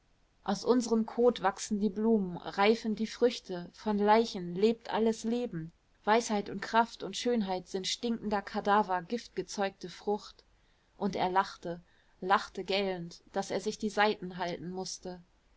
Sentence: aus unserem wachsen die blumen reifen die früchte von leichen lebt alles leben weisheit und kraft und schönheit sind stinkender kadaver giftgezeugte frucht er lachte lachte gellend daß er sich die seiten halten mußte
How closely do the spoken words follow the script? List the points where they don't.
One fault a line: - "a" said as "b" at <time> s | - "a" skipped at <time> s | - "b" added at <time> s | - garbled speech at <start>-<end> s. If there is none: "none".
- "kot" added at 1.1 s
- "und" added at 11.0 s